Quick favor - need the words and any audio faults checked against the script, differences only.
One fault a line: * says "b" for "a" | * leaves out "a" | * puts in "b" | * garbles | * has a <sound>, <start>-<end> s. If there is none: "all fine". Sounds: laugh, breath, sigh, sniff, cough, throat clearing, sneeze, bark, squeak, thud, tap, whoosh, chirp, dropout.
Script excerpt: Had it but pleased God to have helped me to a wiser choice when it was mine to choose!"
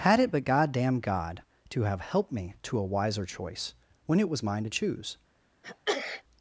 * says "goddamn" for "pleased"
* has a sneeze, 5.6-6.2 s